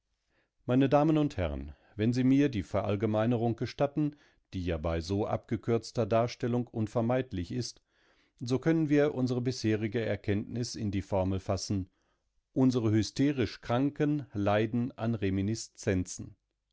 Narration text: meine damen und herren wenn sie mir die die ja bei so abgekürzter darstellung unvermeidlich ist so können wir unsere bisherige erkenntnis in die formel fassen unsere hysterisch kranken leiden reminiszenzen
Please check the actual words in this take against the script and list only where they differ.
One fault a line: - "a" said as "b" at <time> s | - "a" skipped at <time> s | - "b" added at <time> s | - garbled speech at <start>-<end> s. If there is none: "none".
- "verallgemeinerung gestatten" added at 2.6 s
- "an" added at 15.0 s